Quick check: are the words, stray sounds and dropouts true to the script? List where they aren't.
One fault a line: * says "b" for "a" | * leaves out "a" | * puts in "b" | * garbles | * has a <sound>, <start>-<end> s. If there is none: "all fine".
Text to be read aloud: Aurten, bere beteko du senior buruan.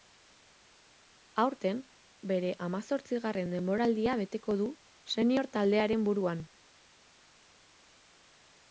* puts in "hamazortzigarren denboraldia"
* puts in "taldearen"